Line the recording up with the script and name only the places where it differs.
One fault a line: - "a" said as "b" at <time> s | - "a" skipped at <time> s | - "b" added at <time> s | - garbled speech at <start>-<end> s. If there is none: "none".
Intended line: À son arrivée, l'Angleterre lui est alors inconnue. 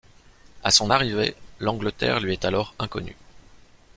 none